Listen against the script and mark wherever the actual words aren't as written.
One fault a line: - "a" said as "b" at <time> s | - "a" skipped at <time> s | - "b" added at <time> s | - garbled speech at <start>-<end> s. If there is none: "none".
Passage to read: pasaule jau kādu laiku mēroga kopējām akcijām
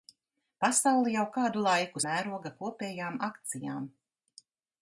none